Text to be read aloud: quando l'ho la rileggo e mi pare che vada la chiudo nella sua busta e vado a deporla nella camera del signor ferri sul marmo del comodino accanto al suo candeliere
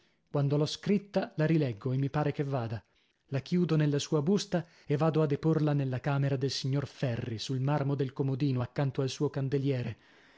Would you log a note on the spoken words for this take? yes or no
yes